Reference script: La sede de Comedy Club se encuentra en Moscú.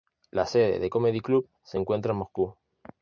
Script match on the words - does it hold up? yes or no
yes